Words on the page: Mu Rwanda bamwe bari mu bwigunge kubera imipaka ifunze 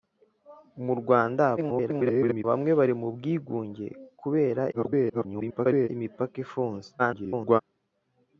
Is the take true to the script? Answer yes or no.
no